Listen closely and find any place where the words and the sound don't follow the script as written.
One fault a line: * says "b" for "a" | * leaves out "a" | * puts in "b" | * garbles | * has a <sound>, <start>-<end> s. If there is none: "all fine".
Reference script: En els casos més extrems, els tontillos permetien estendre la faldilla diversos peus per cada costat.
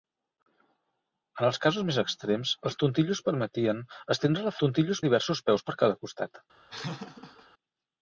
* says "tontillos" for "faldilla"
* has a laugh, 6.7-7.5 s